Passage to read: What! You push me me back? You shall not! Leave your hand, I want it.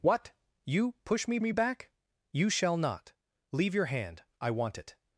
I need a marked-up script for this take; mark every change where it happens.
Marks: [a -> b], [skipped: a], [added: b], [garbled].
What! You push me me back? You shall not! Leave your hand, I want it.